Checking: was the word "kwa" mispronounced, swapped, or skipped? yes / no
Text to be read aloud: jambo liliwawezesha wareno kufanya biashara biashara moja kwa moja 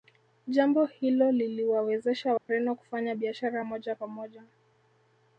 no